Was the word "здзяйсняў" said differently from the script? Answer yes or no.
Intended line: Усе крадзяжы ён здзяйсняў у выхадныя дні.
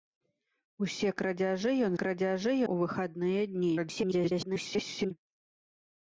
yes